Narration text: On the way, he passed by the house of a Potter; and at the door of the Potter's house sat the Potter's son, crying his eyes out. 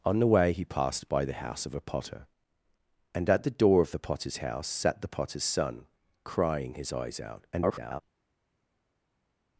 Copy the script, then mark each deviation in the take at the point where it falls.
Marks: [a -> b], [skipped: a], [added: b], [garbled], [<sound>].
On the way, he passed by the house of a Potter; and at the door of the Potter's house sat the Potter's son, crying his eyes out. [garbled]